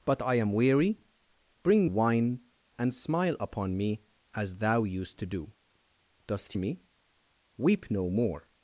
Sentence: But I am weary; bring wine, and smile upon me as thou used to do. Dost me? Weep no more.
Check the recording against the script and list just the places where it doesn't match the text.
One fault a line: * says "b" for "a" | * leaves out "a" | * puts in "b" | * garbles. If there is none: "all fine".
all fine